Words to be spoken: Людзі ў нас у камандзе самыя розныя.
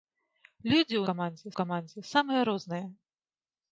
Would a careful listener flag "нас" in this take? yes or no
yes